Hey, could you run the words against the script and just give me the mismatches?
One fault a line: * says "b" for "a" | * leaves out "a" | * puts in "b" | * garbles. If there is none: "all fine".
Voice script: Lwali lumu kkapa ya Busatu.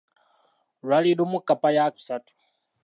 all fine